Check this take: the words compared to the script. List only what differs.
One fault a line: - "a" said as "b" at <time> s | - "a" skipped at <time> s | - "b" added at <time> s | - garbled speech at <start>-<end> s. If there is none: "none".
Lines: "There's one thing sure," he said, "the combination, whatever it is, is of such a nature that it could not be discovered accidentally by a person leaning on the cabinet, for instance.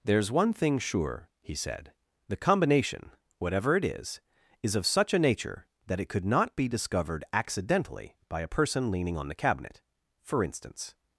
none